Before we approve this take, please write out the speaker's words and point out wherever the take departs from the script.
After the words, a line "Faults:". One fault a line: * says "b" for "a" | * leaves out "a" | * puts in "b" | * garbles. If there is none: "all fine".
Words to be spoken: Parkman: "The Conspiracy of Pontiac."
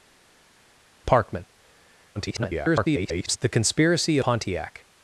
Parkman: [garbled] "The Conspiracy Pontiac."
Faults:
* garbles
* leaves out "of"